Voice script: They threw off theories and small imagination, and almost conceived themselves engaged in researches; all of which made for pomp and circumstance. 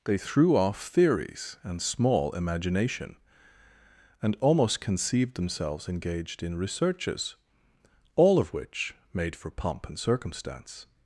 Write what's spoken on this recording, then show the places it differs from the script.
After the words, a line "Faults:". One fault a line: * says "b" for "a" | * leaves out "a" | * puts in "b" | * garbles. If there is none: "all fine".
They threw off theories and small imagination, and almost conceived themselves engaged in researches; all of which made for pomp and circumstance.
Faults:
all fine